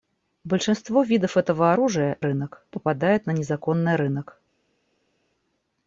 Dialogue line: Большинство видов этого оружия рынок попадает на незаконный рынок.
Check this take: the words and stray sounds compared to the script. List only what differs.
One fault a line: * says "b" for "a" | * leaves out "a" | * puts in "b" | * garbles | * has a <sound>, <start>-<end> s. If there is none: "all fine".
all fine